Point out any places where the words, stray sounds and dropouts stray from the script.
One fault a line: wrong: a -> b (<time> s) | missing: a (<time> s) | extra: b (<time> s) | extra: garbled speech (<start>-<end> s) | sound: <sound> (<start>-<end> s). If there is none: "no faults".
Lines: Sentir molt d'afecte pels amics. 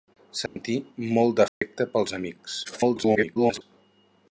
sound: dropout (0.5-0.6 s)
sound: dropout (1.5-1.6 s)
extra: garbled speech (2.6-3.6 s)